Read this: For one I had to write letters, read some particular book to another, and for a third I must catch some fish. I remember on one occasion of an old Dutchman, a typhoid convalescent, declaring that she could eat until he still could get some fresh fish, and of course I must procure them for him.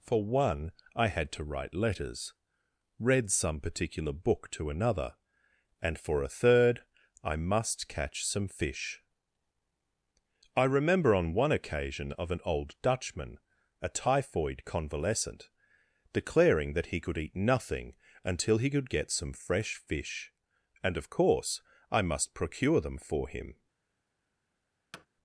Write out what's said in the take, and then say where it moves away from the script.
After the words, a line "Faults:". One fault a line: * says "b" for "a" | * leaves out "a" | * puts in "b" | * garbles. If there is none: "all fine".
For one I had to write letters, read some particular book to another, and for a third I must catch some fish. I remember on one occasion of an old Dutchman, a typhoid convalescent, declaring that he could eat nothing until he could get some fresh fish, and of course I must procure them for him.
Faults:
* says "he" for "she"
* puts in "nothing"
* leaves out "still"